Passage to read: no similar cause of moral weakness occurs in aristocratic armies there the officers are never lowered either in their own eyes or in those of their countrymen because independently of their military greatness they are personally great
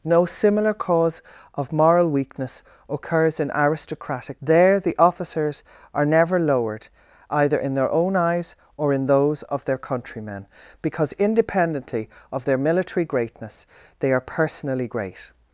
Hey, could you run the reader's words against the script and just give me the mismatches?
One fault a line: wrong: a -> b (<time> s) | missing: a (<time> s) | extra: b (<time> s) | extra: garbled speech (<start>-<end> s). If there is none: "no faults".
missing: armies (4.4 s)